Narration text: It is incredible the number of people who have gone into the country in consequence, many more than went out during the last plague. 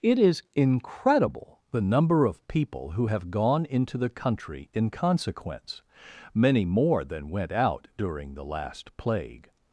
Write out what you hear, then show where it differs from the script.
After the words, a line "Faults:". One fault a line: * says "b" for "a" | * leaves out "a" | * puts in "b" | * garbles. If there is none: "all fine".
It is incredible the number of people who have gone into the country in consequence, many more than went out during the last plague.
Faults:
all fine